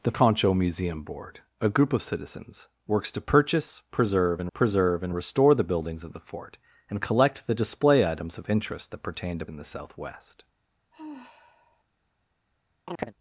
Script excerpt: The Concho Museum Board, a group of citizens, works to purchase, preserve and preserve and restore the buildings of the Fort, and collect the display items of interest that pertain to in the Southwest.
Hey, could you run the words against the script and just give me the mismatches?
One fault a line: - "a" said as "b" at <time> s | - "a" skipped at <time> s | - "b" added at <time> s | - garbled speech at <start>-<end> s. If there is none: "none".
none